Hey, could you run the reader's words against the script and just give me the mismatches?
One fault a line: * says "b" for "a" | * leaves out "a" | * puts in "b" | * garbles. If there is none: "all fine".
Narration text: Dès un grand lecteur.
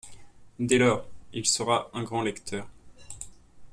* puts in "lors il sera"